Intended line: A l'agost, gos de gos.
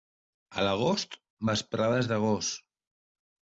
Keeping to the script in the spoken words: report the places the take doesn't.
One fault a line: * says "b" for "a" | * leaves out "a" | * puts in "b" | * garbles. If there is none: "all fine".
* says "vesprades" for "gos"